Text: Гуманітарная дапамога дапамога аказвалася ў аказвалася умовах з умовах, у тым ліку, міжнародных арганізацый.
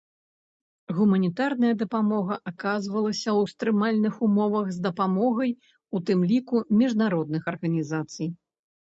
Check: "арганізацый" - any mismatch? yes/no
no